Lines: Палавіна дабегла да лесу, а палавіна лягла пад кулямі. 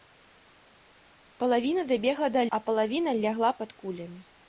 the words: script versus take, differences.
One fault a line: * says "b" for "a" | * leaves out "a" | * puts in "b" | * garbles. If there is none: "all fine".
* leaves out "лесу"